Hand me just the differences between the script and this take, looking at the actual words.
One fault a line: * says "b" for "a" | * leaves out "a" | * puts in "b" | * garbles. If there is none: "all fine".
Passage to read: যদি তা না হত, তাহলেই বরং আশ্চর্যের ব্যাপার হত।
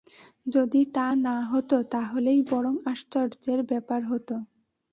all fine